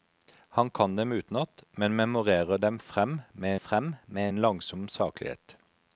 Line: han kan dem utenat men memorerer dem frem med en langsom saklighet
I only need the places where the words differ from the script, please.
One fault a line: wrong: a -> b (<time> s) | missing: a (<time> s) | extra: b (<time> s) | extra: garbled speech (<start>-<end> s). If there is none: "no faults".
extra: frem med (3.5 s)